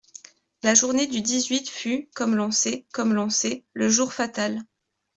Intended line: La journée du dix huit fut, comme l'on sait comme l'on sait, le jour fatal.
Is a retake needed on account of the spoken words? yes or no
no